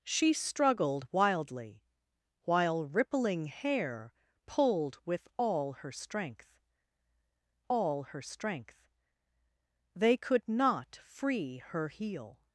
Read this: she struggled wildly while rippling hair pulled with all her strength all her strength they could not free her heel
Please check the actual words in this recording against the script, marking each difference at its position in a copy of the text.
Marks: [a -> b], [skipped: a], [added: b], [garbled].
she struggled wildly while rippling hair pulled with all her strength all her strength they could not free her heel